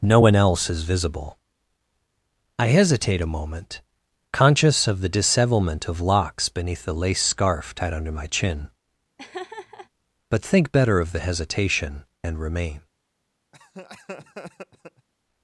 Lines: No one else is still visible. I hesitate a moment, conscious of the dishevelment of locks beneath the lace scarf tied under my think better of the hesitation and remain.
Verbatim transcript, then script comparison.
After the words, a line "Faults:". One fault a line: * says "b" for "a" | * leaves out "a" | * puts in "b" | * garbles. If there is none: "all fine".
No one else is visible. I hesitate a moment, conscious of the dishevelment of locks beneath the lace scarf tied under my chin, but think better of the hesitation and remain.
Faults:
* leaves out "still"
* puts in "chin but"